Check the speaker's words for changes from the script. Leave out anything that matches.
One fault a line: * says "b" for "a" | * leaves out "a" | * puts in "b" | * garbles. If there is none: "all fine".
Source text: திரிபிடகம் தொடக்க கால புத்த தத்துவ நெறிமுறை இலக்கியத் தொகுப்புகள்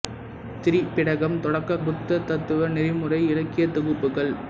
* leaves out "கால"